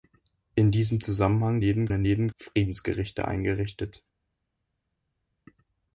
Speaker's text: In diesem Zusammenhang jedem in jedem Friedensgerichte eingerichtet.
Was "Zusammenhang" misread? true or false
false